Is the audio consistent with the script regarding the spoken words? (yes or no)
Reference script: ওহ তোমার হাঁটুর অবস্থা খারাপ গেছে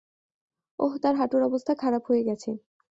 no